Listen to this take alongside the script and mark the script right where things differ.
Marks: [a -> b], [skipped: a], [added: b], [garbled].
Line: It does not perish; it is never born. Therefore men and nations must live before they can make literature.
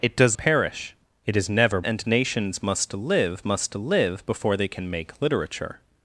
It does [skipped: not] perish; it is never [born. Therefore men and nations -> and nations must live] must live before they can make literature.